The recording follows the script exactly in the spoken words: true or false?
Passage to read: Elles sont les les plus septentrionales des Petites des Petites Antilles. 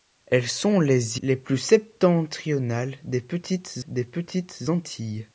true